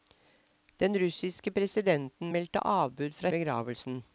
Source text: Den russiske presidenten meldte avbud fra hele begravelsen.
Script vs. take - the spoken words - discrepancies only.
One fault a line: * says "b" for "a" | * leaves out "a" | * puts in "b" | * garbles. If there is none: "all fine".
* leaves out "hele"